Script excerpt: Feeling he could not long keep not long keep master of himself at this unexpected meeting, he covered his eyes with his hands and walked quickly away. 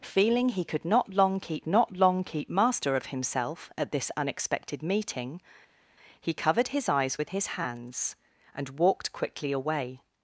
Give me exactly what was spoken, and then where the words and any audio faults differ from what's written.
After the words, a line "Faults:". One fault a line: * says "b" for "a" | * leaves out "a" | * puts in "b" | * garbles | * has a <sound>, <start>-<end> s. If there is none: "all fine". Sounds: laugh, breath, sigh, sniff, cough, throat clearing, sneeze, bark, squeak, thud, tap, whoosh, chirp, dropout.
Feeling he could not long keep not long keep master of himself at this unexpected meeting, he covered his eyes with his hands and walked quickly away.
Faults:
all fine